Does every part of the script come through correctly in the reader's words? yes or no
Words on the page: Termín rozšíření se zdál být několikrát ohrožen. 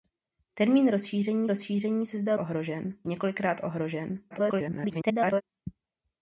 no